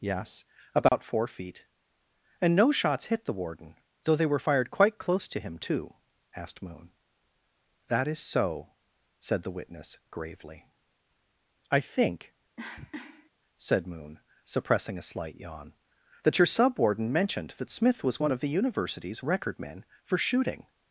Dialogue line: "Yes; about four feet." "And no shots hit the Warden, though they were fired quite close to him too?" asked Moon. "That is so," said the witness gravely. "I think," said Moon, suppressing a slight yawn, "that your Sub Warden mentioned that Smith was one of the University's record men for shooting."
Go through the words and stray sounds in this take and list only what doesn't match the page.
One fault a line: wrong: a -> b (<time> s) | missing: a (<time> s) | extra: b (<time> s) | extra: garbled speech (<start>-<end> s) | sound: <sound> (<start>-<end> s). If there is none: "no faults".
sound: dropout (0.9-0.9 s)
sound: cough (12.6-13.3 s)